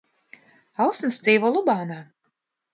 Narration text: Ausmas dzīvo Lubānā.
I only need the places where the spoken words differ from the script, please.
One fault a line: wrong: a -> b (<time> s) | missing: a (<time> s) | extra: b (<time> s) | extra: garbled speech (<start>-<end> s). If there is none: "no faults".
no faults